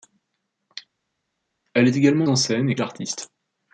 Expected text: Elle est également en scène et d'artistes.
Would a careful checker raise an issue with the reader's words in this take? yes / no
no